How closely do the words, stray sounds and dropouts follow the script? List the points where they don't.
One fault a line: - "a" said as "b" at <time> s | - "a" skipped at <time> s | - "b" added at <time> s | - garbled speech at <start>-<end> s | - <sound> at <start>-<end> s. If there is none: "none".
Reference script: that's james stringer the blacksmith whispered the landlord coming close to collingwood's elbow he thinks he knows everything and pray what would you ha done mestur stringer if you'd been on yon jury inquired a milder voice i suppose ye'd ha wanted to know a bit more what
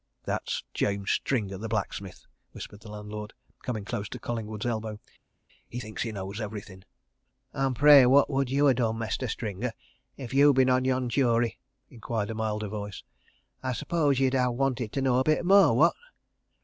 none